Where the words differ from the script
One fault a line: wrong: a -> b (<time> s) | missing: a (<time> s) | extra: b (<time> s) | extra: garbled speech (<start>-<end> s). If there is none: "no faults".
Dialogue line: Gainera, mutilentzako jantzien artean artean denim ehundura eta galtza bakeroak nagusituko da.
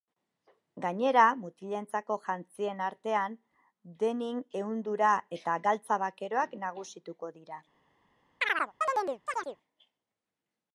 missing: artean (3.4 s)
wrong: da -> dira (7.4 s)